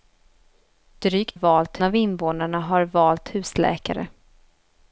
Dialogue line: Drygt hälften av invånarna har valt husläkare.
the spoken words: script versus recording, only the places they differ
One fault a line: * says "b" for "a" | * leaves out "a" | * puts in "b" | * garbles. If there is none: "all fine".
* says "valt" for "hälften"